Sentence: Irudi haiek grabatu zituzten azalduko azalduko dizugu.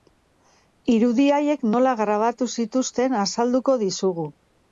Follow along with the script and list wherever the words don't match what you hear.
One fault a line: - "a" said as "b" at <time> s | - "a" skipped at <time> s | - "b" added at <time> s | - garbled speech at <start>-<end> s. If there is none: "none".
- "nola" added at 1.8 s
- "azalduko" skipped at 3.8 s